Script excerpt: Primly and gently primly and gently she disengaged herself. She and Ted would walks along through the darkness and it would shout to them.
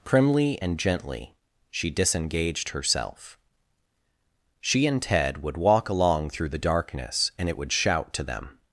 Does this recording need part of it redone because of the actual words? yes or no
yes